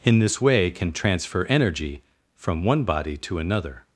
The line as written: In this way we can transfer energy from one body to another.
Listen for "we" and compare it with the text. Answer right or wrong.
wrong